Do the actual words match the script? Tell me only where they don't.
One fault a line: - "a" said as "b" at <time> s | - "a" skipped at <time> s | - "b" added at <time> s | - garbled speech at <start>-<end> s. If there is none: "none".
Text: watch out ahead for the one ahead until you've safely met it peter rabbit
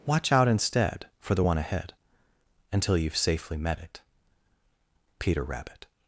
- "ahead" said as "instead" at 0.5 s